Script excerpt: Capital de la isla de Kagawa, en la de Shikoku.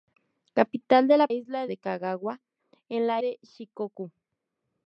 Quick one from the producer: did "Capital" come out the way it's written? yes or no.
yes